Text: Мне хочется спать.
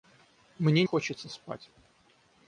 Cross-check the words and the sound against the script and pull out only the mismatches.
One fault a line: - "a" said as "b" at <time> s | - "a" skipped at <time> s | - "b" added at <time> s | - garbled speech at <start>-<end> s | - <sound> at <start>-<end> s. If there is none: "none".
none